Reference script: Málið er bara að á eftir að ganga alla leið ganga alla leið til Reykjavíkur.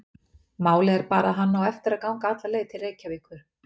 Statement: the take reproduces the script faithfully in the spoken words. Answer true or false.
false